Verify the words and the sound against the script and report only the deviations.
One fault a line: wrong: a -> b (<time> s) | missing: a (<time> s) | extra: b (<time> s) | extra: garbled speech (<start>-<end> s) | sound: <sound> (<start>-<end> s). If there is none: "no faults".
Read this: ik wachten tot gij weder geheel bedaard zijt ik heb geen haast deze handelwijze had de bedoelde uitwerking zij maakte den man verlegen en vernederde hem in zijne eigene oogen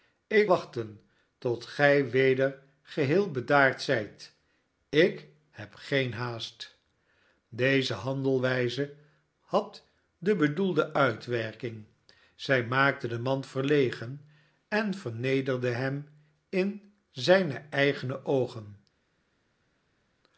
no faults